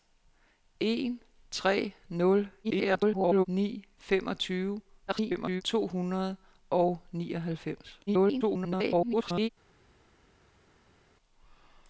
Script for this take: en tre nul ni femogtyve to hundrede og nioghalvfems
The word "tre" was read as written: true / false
true